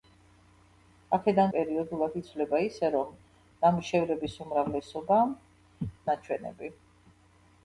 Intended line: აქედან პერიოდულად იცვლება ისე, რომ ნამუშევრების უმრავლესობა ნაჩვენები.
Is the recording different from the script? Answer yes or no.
no